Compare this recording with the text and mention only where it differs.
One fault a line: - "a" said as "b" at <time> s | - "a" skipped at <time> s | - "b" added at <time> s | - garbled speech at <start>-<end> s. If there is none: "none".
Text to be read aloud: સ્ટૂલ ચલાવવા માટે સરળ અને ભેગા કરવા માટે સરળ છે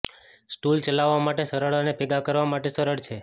none